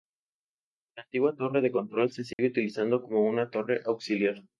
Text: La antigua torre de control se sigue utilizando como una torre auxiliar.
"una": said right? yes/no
yes